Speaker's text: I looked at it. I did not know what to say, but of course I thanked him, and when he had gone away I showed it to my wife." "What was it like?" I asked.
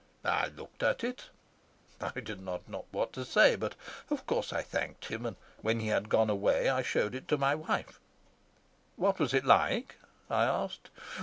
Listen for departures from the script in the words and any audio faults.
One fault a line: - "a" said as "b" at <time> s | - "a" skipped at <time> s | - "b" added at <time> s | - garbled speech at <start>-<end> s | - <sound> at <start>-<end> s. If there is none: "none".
none